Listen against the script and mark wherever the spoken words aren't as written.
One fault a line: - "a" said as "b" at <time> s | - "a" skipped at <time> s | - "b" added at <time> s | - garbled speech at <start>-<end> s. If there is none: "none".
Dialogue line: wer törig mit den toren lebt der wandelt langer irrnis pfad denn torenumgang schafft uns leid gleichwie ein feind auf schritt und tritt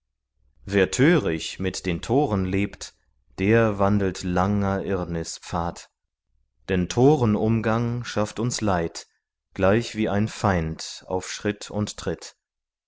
none